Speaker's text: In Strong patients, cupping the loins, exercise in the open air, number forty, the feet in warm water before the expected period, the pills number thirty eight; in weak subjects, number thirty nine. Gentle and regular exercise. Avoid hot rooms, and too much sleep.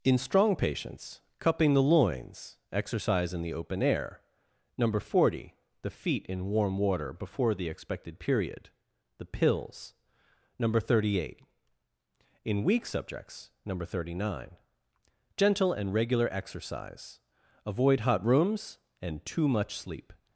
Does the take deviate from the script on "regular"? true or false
false